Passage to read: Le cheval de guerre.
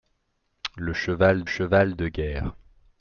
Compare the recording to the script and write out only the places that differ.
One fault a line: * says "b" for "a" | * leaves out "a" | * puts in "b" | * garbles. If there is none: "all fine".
* puts in "cheval"